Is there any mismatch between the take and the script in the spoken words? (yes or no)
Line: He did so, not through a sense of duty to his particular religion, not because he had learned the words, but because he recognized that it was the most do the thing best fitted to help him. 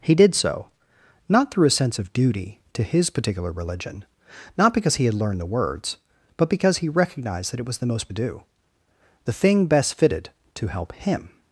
no